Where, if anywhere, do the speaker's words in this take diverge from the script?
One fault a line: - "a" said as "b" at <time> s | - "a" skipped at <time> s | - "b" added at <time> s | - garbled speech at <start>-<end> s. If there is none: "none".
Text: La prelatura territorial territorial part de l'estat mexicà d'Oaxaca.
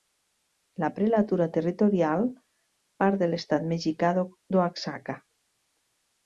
- "territorial" skipped at 2.2 s